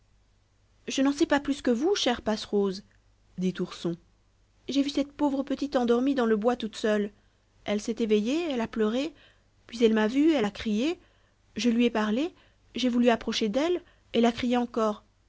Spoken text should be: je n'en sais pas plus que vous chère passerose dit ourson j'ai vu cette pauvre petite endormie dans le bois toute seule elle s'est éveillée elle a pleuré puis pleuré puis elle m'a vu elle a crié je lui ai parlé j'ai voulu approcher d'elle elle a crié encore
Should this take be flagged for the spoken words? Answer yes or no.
yes